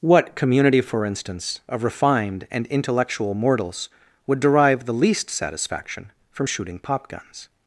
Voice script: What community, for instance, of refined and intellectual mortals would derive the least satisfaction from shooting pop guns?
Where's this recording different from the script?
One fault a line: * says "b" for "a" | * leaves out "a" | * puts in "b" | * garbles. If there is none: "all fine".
all fine